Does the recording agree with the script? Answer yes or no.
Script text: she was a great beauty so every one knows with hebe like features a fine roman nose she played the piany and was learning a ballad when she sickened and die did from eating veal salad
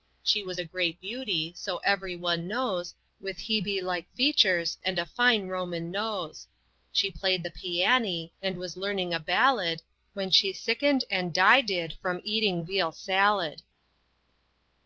no